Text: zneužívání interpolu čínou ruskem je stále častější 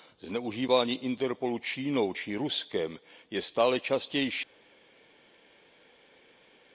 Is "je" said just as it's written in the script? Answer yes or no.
yes